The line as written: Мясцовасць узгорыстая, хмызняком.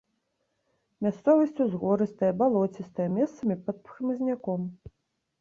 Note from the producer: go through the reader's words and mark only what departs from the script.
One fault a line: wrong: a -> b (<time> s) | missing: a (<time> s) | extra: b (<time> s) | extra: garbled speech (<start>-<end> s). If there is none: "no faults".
extra: балоцістая месцамі пад (2.4 s)